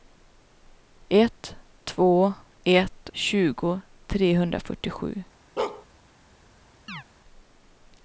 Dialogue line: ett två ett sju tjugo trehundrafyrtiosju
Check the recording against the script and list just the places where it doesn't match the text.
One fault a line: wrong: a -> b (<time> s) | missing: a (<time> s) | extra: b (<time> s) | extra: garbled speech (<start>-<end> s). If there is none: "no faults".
missing: sju (3.1 s)